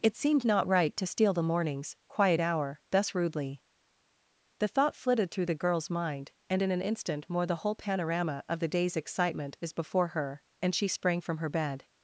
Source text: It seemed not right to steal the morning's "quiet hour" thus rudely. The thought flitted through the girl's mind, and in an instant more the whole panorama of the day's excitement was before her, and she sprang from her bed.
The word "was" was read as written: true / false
false